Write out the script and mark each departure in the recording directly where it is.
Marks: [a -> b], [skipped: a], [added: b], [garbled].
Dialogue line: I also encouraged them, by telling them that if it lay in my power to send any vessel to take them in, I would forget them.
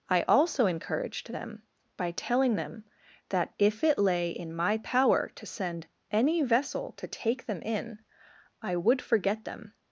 I also encouraged them, by telling them that if it lay in my power to send any vessel to take them in, I would forget them.